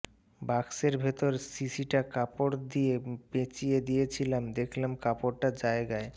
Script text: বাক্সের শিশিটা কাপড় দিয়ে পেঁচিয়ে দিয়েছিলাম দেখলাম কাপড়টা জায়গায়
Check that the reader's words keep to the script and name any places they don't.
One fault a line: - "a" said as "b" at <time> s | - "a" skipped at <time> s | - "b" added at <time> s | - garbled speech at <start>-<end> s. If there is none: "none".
- "ভেতর" added at 1.0 s